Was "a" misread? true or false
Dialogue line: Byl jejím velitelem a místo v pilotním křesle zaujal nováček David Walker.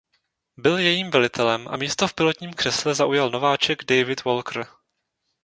false